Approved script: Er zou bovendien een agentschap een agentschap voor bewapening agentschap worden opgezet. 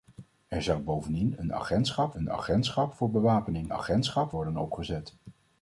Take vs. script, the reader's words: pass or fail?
pass